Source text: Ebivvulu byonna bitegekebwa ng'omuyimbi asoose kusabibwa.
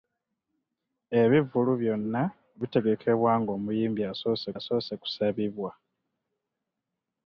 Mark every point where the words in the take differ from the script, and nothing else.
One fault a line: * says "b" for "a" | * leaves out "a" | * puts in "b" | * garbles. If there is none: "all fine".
* puts in "asoose"